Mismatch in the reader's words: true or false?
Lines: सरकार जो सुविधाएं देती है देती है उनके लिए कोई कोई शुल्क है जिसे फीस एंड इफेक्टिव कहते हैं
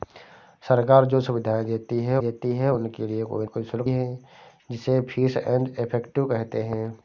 false